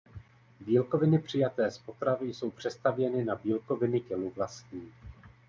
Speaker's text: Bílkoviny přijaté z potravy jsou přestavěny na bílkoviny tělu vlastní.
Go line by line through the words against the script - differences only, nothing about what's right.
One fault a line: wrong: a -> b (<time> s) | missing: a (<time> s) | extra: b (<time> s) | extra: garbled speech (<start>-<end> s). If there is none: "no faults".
no faults